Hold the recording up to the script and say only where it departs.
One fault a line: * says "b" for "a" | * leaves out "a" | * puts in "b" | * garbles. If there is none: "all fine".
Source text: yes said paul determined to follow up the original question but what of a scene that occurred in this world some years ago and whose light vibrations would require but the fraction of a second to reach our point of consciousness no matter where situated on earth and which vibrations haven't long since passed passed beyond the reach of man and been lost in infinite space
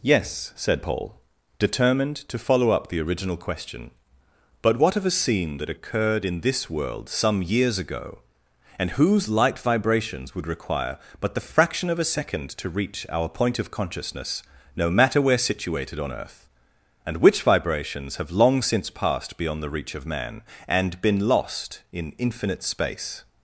* says "have" for "haven't"
* leaves out "passed"